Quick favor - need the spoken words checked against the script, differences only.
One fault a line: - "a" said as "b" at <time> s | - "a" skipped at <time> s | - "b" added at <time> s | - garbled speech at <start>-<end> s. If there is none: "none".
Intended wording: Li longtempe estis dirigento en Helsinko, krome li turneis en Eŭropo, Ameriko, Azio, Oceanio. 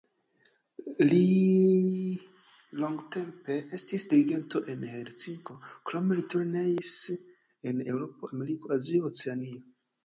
none